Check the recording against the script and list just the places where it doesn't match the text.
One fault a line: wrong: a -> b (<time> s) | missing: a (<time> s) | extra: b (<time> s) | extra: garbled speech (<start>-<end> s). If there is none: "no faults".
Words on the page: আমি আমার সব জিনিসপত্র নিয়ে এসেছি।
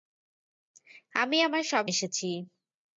missing: জিনিসপত্র নিয়ে (1.9 s)